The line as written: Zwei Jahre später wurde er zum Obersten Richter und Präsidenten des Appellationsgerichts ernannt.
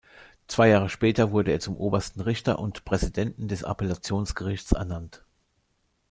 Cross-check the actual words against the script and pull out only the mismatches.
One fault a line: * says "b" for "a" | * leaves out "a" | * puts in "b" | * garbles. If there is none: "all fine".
all fine